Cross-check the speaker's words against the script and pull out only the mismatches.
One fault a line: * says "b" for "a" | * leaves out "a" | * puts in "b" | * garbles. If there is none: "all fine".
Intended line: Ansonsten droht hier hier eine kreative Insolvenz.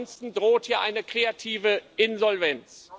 * leaves out "hier"